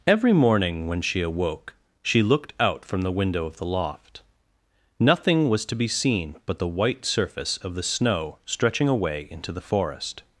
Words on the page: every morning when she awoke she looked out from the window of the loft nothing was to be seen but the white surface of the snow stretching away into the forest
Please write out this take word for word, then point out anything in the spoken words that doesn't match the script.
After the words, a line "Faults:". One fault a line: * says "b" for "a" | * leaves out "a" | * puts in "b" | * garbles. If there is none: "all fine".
every morning when she awoke she looked out from the window of the loft nothing was to be seen but the white surface of the snow stretching away into the forest
Faults:
all fine